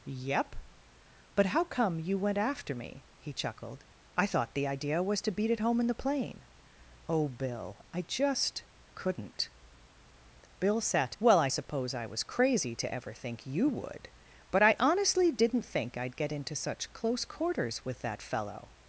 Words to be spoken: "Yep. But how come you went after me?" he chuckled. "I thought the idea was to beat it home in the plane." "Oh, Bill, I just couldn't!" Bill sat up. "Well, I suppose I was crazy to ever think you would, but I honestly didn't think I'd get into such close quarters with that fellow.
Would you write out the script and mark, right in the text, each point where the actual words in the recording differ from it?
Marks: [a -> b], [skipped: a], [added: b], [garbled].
"Yep. But how come you went after me?" he chuckled. "I thought the idea was to beat it home in the plane." "Oh, Bill, I just couldn't!" Bill sat [skipped: up.] "Well, I suppose I was crazy to ever think you would, but I honestly didn't think I'd get into such close quarters with that fellow.